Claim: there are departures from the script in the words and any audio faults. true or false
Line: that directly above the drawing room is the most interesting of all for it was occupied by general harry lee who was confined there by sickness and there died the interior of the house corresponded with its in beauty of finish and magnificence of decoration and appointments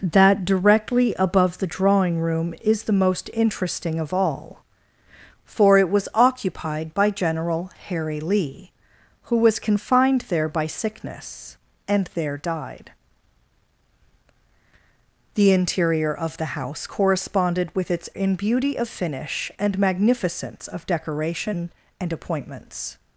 false